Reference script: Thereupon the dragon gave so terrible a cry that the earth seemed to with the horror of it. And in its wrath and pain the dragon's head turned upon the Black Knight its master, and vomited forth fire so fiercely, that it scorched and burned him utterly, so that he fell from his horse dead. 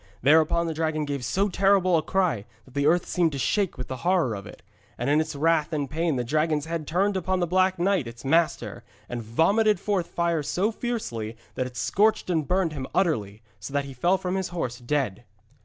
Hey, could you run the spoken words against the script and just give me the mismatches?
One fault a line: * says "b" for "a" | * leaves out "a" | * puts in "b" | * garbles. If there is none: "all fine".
* puts in "shake"